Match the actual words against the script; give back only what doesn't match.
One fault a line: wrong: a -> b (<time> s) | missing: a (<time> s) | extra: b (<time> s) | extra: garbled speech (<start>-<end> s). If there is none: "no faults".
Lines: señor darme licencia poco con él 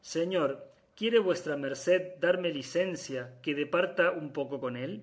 extra: quiere vuestra merced (0.9 s)
extra: que departa un (3.4 s)